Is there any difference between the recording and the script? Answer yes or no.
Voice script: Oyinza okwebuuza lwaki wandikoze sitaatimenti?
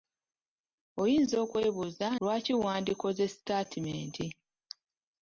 no